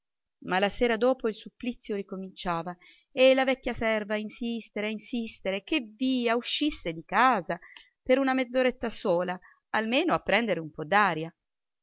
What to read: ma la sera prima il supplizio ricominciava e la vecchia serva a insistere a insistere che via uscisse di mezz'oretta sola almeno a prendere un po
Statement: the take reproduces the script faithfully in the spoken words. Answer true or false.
false